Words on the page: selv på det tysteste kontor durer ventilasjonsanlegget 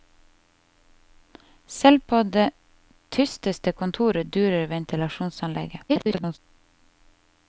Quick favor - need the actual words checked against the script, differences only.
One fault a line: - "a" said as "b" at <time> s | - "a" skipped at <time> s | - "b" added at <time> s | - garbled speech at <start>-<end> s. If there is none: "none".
- garbled speech at 5.9-6.4 s